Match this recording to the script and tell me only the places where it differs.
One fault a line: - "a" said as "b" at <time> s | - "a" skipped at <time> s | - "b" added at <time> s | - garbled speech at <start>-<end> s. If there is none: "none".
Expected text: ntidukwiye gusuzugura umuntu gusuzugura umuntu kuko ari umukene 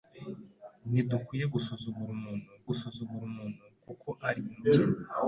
none